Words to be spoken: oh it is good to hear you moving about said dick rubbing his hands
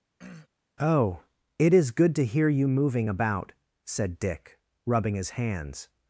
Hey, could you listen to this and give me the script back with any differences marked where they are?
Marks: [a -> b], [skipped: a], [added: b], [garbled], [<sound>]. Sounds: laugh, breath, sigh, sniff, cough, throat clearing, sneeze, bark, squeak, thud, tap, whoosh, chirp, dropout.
[throat clearing] oh it is good to hear you moving about said dick rubbing his hands